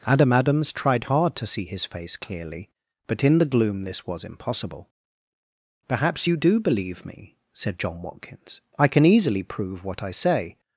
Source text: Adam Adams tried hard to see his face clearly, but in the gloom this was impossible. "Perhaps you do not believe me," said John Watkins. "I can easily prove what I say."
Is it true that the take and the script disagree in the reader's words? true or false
true